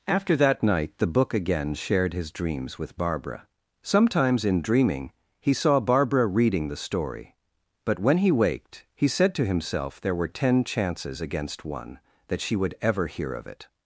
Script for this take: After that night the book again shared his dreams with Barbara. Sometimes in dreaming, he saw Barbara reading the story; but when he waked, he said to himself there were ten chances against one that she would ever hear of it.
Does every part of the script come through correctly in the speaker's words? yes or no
yes